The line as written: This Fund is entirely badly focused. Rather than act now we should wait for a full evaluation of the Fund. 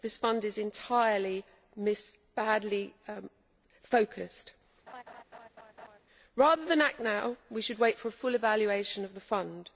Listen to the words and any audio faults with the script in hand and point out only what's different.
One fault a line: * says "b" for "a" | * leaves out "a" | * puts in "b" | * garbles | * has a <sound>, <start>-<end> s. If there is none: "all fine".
* has a laugh, 4.9-6.0 s